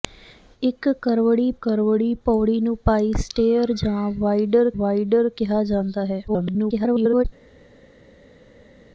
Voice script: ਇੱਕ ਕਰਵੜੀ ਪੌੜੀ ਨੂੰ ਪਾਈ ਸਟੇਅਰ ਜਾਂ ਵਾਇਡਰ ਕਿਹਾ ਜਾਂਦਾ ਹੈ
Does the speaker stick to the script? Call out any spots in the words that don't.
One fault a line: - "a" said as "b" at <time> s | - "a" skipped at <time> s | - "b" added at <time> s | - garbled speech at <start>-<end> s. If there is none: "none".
- "ਕਰਵੜੀ" added at 1.6 s
- "ਵਾਇਡਰ" added at 4.8 s
- garbled speech at 6.3-7.2 s